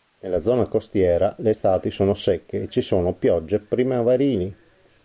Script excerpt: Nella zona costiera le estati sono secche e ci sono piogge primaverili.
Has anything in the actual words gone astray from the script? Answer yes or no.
no